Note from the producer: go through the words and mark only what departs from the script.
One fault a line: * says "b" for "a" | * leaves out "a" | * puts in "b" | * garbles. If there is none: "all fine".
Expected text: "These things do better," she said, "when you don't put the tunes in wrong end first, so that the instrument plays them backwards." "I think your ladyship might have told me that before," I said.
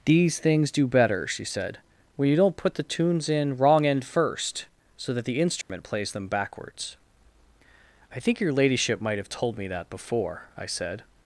all fine